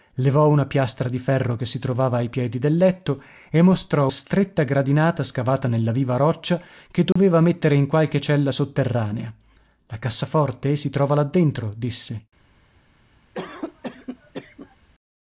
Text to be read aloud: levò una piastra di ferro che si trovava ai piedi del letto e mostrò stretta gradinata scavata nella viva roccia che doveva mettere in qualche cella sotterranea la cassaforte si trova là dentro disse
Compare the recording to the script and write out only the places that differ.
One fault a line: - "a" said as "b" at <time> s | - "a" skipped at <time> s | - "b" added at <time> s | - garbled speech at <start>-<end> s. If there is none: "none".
none